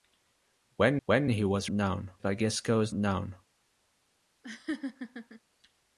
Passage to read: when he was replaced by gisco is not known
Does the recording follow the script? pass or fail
fail